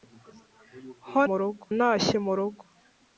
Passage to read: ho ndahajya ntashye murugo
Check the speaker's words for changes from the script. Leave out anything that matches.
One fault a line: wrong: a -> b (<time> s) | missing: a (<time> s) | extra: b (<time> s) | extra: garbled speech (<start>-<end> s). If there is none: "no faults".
wrong: ndahajya -> murugo (1.3 s)